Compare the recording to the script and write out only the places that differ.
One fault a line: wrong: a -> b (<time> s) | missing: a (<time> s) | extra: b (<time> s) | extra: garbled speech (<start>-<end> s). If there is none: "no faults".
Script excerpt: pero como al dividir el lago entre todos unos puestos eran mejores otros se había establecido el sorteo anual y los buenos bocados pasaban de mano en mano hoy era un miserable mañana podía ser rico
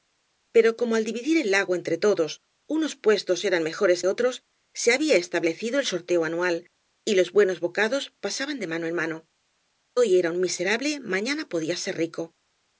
no faults